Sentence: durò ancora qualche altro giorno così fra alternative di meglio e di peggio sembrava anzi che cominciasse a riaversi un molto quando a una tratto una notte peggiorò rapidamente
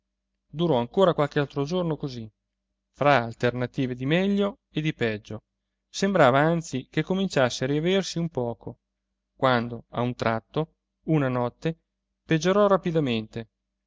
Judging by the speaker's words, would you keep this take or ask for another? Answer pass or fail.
fail